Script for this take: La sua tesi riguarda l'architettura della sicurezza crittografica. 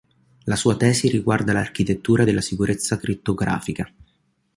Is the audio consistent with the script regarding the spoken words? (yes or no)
yes